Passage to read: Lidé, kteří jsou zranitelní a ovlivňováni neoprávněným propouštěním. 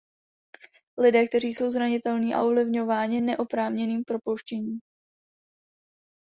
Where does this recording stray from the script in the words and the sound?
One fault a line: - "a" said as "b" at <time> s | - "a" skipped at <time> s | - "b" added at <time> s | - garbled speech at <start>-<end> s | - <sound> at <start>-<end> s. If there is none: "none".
none